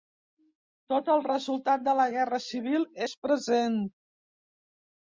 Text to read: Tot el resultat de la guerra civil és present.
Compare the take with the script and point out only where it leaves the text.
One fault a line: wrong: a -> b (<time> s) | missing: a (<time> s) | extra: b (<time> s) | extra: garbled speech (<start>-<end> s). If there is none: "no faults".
no faults